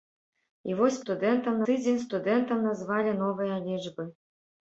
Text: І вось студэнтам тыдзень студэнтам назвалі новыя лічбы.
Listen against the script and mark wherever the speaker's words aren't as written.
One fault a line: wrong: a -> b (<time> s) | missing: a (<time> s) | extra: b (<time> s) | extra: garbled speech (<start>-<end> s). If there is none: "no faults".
no faults